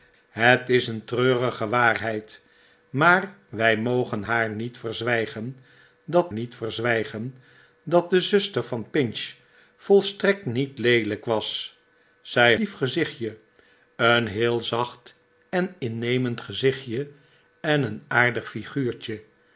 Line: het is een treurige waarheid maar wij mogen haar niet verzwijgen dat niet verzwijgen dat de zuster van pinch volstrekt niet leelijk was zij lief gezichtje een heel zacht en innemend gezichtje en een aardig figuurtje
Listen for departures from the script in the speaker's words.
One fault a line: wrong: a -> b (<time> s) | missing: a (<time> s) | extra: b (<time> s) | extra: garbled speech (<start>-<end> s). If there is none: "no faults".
no faults